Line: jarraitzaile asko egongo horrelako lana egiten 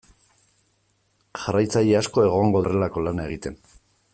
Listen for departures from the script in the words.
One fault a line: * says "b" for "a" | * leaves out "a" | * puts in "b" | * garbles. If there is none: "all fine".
all fine